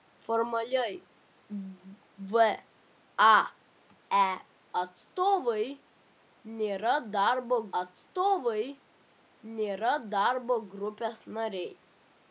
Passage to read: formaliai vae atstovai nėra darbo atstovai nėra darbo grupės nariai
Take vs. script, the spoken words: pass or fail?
pass